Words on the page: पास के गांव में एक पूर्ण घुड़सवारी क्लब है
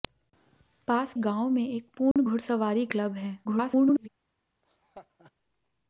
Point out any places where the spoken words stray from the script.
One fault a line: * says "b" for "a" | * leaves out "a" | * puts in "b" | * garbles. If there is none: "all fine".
* leaves out "के"
* garbles